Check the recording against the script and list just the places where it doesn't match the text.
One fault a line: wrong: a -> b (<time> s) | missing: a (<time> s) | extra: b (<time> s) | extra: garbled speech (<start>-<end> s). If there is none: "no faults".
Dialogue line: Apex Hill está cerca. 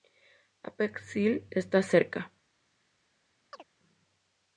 no faults